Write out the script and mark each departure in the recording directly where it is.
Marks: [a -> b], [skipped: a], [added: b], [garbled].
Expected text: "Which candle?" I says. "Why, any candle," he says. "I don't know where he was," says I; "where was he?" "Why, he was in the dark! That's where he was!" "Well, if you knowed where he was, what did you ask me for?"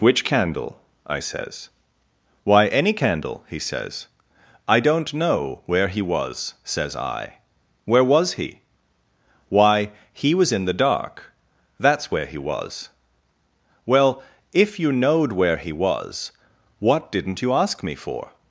"Which candle?" I says. "Why, any candle," he says. "I don't know where he was," says I; "where was he?" "Why, he was in the dark! That's where he was!" "Well, if you knowed where he was, what [did -> didn't] you ask me for?"